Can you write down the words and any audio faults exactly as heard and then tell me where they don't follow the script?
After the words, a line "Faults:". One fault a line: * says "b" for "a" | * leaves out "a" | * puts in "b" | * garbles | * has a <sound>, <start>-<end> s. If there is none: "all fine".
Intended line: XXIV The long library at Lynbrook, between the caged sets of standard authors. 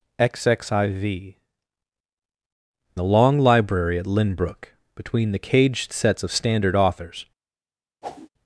XXIV The long library at Lynbrook, between the caged sets of standard authors.
Faults:
* has a whoosh, 8.0-8.3 s